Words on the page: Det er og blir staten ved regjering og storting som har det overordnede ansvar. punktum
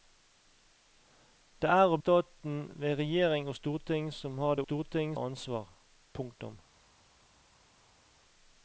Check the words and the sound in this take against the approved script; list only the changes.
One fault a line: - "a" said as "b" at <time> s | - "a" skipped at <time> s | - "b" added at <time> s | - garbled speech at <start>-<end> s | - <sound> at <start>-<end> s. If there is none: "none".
- "blir" skipped at 2.0 s
- "overordnede" said as "storting" at 4.6 s